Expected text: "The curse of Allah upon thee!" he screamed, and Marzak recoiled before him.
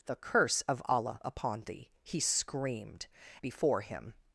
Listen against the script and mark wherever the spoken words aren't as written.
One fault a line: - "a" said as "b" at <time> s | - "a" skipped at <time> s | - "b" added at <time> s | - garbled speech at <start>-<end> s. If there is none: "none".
- "and Marzak recoiled" skipped at 3.1 s